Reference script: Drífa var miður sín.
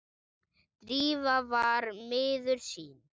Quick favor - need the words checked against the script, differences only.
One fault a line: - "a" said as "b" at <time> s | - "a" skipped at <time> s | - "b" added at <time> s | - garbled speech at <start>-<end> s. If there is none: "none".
none